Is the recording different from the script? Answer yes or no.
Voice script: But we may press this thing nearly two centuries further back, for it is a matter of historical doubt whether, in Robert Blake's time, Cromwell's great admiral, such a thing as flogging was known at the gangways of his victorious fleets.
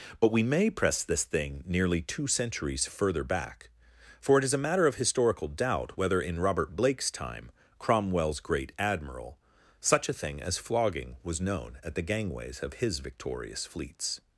no